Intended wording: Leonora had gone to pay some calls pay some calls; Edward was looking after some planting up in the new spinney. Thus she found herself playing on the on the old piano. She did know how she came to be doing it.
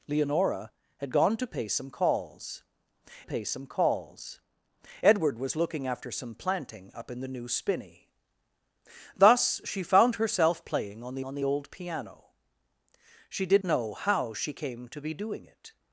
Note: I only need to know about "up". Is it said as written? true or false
true